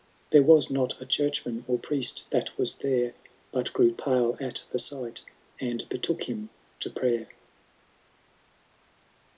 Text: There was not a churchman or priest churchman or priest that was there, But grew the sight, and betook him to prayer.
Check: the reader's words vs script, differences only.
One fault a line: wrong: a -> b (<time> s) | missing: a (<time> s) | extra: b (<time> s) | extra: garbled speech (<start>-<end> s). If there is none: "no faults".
missing: churchman or priest (2.2 s)
extra: pale at (3.9 s)